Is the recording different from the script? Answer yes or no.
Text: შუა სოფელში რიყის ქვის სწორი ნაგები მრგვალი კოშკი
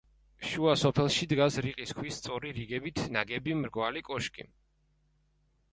yes